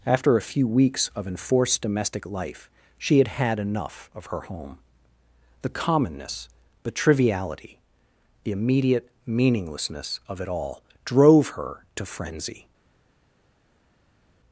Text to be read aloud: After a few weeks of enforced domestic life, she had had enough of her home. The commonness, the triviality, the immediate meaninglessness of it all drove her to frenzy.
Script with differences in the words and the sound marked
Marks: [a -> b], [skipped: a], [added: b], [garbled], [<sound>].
After a few weeks of enforced domestic life, she had had enough of her home. The commonness, the triviality, the immediate meaninglessness of it all drove her to frenzy.